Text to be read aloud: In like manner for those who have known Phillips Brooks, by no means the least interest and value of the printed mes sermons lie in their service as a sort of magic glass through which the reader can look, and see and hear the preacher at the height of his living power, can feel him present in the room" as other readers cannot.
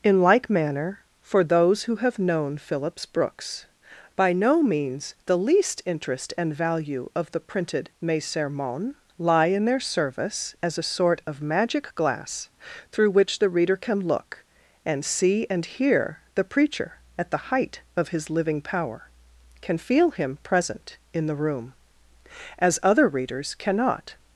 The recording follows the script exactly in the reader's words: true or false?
true